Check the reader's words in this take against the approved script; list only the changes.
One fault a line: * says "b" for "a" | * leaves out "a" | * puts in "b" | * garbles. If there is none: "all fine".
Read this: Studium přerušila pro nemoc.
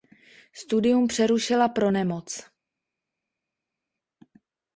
all fine